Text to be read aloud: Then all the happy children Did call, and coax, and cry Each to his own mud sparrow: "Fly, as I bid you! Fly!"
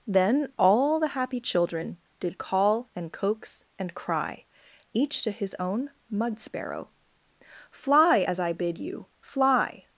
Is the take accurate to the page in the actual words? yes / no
yes